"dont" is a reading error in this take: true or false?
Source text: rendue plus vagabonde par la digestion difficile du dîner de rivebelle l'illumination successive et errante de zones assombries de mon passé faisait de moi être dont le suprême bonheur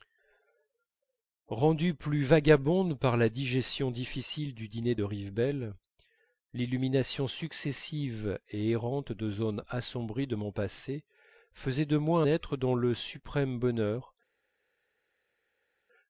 false